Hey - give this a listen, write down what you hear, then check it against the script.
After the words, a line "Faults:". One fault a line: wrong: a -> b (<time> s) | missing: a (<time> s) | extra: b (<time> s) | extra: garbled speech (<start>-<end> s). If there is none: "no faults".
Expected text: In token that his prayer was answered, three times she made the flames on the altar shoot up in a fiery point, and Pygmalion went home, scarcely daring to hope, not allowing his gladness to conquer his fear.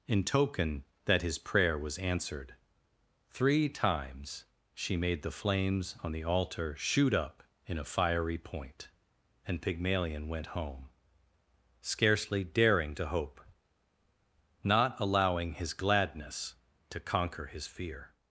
In token that his prayer was answered, three times she made the flames on the altar shoot up in a fiery point, and Pygmalion went home, scarcely daring to hope, not allowing his gladness to conquer his fear.
Faults:
no faults